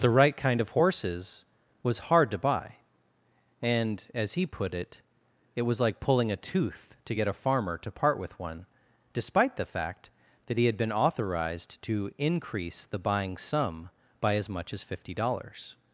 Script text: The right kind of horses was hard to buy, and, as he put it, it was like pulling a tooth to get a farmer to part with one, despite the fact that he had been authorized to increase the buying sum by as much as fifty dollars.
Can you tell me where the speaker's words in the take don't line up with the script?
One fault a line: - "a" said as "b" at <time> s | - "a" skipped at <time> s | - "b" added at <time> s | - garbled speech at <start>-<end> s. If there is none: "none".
none